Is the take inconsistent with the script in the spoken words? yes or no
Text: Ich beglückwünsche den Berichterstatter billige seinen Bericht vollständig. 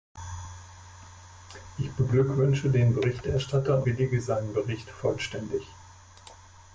no